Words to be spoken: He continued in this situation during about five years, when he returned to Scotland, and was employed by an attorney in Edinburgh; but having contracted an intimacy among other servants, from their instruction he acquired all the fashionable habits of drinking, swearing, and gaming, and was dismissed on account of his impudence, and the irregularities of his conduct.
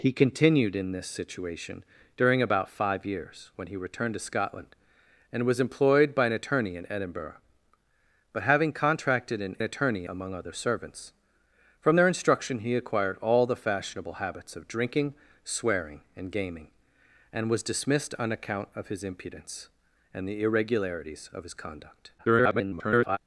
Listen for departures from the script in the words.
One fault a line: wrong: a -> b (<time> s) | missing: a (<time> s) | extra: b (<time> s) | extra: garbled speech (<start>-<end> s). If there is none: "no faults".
wrong: intimacy -> attorney (9.6 s)
extra: garbled speech (22.2-23.2 s)